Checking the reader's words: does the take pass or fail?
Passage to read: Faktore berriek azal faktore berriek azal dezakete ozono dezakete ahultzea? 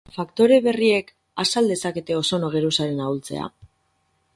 fail